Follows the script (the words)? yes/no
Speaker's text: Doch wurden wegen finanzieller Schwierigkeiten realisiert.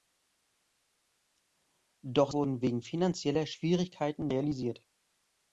yes